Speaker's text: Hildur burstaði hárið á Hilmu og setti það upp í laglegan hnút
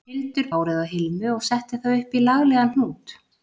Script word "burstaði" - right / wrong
wrong